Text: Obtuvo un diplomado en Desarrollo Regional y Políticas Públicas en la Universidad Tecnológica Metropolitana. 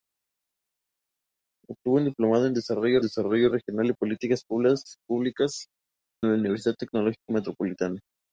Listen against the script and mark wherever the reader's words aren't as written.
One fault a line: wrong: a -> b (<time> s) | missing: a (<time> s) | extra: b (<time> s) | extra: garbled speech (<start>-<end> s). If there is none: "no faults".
extra: Desarrollo (3.0 s)
missing: en (5.7 s)